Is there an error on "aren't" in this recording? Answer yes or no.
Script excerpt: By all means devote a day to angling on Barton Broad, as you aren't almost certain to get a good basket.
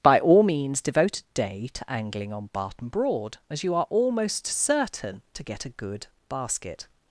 yes